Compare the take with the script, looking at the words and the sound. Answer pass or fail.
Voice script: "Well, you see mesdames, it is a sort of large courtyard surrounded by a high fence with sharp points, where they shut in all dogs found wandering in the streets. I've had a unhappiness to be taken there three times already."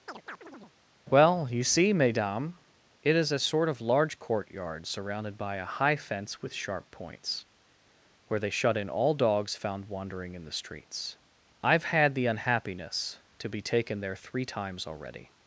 fail